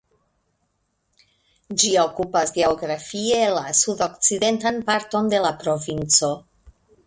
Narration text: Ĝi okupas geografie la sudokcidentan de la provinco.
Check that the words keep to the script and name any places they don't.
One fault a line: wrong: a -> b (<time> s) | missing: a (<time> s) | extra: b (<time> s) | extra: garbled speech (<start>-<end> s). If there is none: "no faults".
extra: parton (4.9 s)